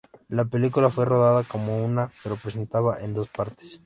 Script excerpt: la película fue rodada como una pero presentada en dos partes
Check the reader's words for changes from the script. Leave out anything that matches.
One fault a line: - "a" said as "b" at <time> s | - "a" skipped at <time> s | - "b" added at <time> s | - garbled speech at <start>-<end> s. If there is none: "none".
none